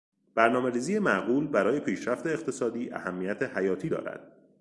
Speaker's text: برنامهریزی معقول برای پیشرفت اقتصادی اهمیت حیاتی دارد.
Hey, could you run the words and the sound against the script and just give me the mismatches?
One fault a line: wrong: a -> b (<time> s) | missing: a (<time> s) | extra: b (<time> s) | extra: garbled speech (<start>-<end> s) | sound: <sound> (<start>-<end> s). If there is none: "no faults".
no faults